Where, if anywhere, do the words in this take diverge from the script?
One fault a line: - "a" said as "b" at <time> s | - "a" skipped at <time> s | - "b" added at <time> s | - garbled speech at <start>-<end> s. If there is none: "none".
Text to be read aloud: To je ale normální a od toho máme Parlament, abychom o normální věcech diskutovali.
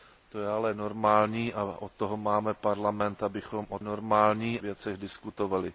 none